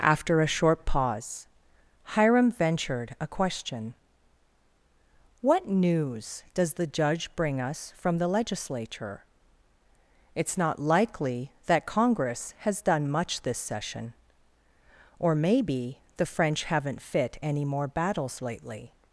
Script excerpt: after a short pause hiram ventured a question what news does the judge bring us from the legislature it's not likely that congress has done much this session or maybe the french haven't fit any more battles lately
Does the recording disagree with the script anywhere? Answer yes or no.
no